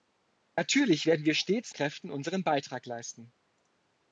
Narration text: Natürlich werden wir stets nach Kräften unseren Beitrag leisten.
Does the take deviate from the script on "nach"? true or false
true